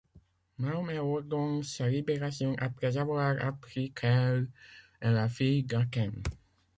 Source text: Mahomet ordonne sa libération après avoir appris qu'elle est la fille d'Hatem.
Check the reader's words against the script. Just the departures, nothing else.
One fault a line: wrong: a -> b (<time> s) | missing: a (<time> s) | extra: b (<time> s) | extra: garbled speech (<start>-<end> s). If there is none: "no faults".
no faults